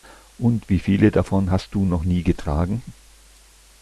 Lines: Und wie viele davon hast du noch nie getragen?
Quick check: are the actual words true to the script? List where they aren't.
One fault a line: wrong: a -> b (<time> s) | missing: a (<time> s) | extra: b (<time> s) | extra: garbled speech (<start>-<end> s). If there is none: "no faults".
no faults